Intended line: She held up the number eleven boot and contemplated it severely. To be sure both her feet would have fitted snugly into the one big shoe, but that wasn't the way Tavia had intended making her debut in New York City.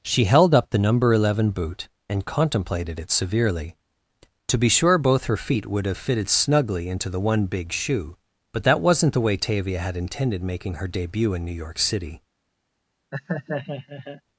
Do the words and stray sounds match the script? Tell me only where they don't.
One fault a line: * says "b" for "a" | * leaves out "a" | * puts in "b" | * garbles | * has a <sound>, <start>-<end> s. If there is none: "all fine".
* has a laugh, 13.1-14.2 s